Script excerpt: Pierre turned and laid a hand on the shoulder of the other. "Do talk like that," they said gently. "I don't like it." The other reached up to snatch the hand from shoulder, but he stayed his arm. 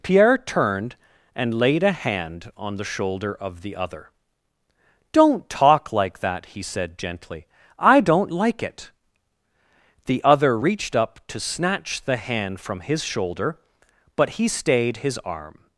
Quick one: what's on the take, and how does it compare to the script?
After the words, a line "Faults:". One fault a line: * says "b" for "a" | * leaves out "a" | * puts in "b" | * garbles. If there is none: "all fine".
Pierre turned and laid a hand on the shoulder of the other. "Don't talk like that," he said gently. "I don't like it." The other reached up to snatch the hand from his shoulder, but he stayed his arm.
Faults:
* says "Don't" for "Do"
* says "he" for "they"
* puts in "his"